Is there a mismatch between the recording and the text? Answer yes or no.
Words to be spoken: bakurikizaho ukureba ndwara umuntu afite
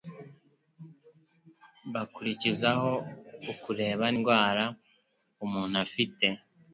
no